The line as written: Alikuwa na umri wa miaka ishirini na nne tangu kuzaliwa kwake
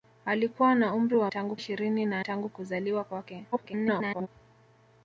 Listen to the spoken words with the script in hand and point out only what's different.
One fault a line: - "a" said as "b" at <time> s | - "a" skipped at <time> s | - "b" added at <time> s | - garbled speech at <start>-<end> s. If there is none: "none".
- "miaka" said as "tangu" at 1.3 s
- "nne" skipped at 2.2 s
- garbled speech at 3.5-4.3 s